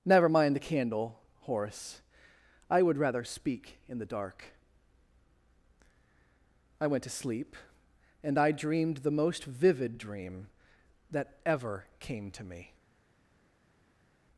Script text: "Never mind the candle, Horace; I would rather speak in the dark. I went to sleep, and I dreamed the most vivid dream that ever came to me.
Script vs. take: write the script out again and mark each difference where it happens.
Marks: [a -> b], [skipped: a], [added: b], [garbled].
"Never mind the candle, Horace; I would rather speak in the dark. I went to sleep, and I dreamed the most vivid dream that ever came to me.